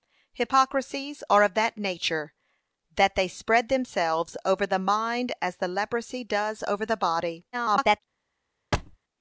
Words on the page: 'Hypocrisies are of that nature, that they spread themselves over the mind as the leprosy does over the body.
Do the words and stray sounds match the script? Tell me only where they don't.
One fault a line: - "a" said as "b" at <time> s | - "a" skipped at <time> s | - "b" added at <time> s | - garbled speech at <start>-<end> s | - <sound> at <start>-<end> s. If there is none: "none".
- garbled speech at 7.5-8.0 s
- thud at 8.7-9.0 s